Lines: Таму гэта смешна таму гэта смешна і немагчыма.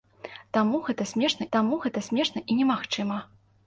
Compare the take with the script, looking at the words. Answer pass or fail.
pass